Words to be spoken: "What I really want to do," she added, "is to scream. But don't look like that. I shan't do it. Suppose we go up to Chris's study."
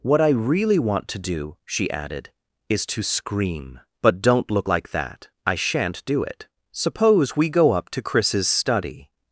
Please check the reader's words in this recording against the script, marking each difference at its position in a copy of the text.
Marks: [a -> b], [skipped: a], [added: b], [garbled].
"What I really want to do," she added, "is to scream. But don't look like that. I shan't do it. Suppose we go up to Chris's study."